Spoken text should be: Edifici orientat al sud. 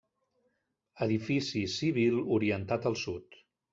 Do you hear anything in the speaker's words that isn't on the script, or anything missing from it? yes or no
yes